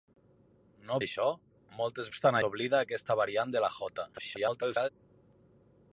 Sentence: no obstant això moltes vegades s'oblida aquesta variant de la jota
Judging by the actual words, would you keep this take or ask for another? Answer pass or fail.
fail